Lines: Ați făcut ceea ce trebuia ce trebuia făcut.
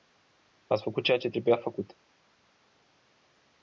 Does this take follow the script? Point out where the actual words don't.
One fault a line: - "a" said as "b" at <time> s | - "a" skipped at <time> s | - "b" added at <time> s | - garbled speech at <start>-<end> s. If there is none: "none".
- "ce trebuia" skipped at 1.6 s